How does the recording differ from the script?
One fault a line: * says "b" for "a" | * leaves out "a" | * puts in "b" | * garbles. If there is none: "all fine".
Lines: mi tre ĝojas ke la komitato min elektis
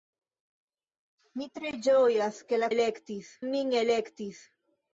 * says "elektis" for "komitato"